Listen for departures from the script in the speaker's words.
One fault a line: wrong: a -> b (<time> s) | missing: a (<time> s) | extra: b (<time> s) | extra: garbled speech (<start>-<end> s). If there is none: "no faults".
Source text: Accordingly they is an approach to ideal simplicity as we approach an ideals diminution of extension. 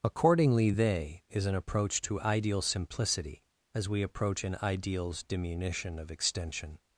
no faults